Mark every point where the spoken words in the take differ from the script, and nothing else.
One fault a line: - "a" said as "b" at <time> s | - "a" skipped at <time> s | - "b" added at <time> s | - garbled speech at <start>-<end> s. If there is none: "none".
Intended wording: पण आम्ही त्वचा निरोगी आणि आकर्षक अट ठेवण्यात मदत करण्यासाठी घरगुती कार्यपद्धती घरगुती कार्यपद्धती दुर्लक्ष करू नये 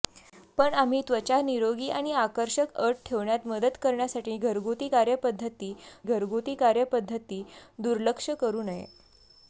none